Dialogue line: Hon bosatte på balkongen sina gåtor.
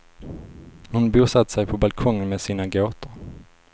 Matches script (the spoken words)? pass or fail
fail